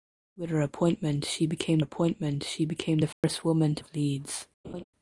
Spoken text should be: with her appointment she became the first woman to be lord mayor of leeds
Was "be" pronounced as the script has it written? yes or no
no